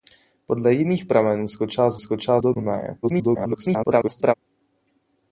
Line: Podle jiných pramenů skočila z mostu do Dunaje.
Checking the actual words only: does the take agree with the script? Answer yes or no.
no